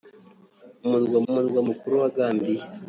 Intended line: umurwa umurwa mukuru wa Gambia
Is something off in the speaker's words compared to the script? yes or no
no